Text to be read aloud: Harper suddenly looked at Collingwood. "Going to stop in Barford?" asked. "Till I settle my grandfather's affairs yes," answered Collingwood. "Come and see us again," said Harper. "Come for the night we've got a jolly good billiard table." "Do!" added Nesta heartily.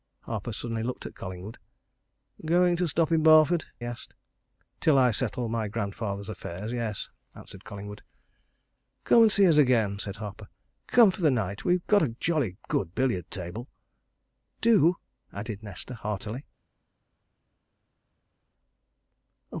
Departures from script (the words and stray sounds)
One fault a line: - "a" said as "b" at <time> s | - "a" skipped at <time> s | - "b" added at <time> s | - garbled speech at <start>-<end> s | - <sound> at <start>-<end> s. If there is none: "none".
none